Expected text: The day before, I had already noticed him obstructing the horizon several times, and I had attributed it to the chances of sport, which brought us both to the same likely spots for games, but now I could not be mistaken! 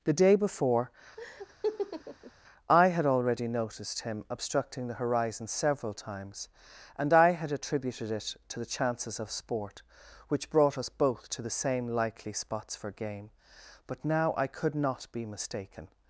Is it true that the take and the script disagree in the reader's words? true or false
true